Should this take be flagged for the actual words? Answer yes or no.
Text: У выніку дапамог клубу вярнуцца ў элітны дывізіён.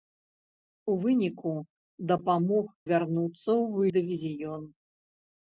yes